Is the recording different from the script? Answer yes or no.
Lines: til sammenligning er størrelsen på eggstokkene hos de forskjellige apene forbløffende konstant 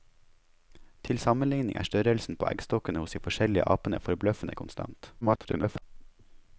yes